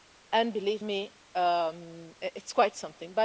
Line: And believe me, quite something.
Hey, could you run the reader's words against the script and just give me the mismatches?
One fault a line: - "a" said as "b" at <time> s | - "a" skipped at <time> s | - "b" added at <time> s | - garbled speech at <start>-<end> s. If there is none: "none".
- "it's" added at 2.2 s